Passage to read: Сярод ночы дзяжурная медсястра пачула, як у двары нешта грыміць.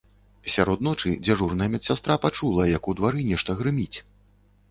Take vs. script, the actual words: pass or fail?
pass